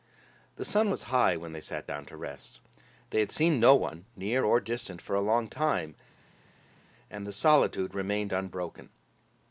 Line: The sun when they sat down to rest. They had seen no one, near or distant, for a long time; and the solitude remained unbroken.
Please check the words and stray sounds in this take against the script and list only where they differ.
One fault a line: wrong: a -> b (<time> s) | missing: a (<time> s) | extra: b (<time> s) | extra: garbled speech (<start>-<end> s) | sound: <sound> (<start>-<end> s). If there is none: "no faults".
extra: was high (0.9 s)